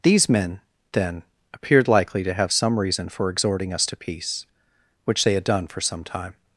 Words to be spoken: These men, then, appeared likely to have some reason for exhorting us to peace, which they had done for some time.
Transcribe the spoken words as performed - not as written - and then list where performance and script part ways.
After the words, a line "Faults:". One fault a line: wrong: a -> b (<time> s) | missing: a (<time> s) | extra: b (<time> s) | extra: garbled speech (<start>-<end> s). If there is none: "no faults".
These men, then, appeared likely to have some reason for exhorting us to peace, which they had done for some time.
Faults:
no faults